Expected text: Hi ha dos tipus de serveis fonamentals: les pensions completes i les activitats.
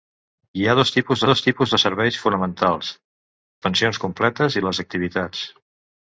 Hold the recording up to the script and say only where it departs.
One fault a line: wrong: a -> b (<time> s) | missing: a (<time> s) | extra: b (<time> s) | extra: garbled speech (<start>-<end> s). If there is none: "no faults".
extra: dos tipus (1.3 s)
missing: les (2.9 s)